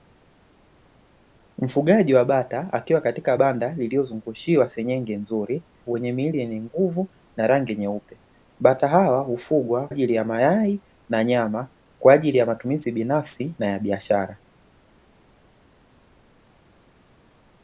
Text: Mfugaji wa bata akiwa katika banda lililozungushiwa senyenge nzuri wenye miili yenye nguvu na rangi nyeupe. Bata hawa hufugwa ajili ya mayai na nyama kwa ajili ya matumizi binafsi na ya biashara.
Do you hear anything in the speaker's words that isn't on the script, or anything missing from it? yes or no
no